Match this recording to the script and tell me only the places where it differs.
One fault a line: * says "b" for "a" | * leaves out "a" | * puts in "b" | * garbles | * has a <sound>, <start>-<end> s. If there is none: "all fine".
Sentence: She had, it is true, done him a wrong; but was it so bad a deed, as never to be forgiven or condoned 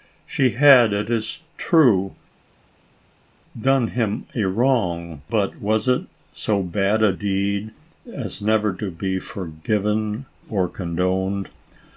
all fine